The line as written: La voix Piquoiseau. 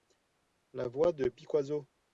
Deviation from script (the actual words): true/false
true